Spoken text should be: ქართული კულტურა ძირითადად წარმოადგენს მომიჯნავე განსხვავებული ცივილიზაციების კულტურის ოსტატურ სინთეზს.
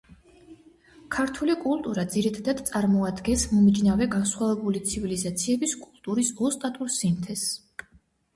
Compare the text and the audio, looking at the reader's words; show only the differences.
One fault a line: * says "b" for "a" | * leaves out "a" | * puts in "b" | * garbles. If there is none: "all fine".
all fine